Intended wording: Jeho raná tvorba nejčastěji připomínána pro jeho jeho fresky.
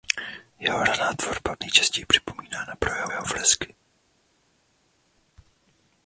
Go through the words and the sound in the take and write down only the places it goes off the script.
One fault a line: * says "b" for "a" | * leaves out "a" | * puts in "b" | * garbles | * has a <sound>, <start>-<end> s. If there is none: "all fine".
all fine